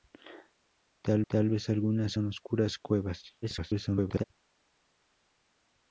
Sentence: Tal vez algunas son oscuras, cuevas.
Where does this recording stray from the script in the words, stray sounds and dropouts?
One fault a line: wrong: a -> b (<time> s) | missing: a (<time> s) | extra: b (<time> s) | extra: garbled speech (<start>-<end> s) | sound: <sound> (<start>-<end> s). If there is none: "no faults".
extra: tal (1.3 s)
extra: garbled speech (3.4-4.2 s)